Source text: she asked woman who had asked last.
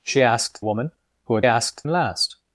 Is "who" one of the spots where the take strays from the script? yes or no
no